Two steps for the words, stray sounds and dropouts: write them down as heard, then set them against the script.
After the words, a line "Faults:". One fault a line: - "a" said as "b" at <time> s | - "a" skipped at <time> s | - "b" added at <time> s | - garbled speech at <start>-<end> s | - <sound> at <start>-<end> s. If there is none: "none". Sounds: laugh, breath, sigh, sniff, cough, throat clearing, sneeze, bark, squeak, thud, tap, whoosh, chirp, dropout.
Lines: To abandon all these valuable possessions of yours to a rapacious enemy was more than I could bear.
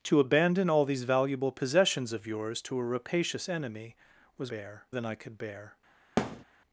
To abandon all these valuable possessions of yours to a rapacious enemy was bear than I could bear.
Faults:
- "more" said as "bear" at 4.5 s
- thud at 6.2-6.4 s